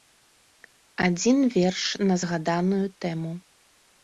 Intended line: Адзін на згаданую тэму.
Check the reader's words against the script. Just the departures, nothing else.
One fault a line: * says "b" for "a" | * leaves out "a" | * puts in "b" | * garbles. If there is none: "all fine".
* puts in "верш"